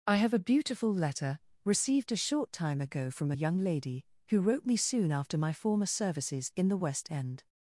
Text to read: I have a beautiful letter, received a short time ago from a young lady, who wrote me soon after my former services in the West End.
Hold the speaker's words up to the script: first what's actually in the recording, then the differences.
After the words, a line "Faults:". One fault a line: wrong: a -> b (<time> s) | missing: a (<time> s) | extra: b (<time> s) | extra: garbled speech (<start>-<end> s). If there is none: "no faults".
I have a beautiful letter, received a short time ago from a young lady, who wrote me soon after my former services in the West End.
Faults:
no faults